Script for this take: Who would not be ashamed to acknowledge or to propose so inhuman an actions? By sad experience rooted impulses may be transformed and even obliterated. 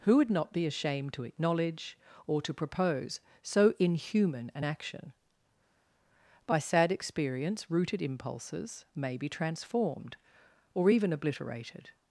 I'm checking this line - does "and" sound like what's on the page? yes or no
no